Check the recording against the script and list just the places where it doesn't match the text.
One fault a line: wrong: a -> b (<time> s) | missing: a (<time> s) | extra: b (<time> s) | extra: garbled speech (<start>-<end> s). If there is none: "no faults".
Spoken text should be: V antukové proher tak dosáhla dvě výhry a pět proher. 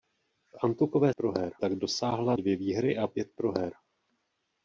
no faults